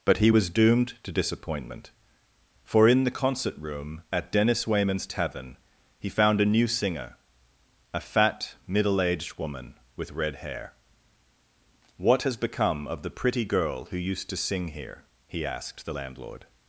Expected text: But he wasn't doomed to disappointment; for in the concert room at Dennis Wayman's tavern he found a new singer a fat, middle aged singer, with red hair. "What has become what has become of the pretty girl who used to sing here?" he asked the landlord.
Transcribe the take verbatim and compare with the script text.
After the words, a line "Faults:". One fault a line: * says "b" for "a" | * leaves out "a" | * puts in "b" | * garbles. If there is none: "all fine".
But he was doomed to disappointment; for in the concert room at Dennis Wayman's tavern he found a new singer a fat, middle aged woman, with red hair. "What has become of the pretty girl who used to sing here?" he asked the landlord.
Faults:
* says "was" for "wasn't"
* says "woman" for "singer"
* leaves out "what has become"